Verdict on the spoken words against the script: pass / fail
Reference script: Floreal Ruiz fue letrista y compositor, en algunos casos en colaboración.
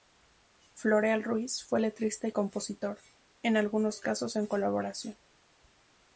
pass